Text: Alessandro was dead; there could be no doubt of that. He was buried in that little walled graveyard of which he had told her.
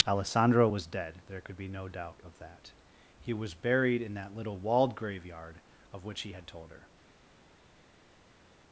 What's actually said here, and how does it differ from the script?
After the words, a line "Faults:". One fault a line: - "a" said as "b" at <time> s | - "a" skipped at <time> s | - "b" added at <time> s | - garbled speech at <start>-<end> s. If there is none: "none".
Alessandro was dead; there could be no doubt of that. He was buried in that little walled graveyard of which he had told her.
Faults:
none